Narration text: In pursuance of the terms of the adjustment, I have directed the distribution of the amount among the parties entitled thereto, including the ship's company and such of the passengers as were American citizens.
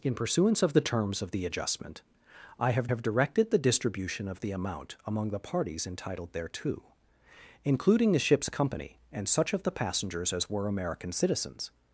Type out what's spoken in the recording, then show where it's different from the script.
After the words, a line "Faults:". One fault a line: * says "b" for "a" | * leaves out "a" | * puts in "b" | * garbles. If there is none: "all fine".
In pursuance of the terms of the adjustment, I have have directed the distribution of the amount among the parties entitled thereto, including the ship's company and such of the passengers as were American citizens.
Faults:
* puts in "have"